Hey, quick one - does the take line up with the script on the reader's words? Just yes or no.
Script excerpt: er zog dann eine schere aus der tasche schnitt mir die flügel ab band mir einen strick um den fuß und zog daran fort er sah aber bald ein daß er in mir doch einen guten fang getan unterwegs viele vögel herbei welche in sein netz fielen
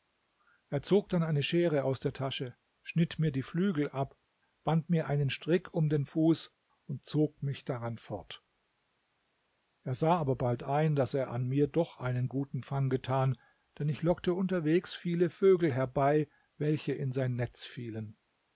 no